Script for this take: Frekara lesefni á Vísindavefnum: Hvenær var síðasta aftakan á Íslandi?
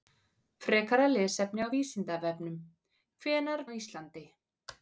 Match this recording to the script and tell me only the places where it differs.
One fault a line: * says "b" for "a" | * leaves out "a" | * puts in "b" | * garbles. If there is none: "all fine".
* leaves out "var síðasta aftakan"